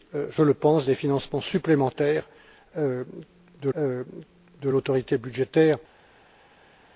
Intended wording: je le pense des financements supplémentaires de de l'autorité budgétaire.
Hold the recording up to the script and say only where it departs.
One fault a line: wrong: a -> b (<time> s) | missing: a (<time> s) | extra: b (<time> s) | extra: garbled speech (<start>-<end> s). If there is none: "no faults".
no faults